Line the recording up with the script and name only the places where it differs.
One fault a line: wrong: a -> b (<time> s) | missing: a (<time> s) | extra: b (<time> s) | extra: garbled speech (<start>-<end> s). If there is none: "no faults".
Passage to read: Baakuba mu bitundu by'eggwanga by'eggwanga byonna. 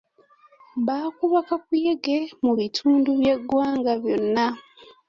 extra: kakuyege (1.5 s)
missing: by'eggwanga (3.9 s)